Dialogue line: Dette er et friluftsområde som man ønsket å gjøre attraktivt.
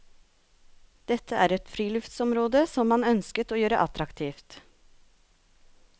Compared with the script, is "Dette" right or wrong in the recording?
right